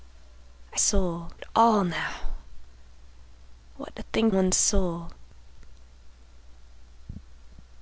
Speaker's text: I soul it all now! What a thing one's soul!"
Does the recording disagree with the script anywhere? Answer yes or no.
no